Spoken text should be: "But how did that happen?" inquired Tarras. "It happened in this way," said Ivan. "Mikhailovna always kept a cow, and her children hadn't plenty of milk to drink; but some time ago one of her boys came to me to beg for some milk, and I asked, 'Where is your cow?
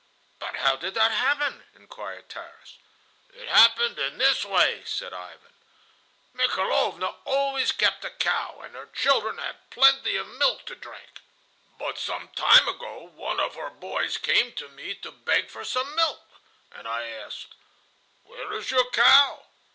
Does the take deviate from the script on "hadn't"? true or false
true